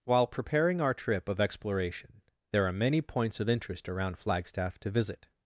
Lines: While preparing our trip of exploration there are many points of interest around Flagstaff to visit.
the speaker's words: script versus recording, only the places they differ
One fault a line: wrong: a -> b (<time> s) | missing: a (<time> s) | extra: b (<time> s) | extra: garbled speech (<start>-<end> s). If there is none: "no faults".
no faults